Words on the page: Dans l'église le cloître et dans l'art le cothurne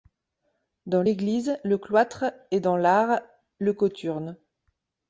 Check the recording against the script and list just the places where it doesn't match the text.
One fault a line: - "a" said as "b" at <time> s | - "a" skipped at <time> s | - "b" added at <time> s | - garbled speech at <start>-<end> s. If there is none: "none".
none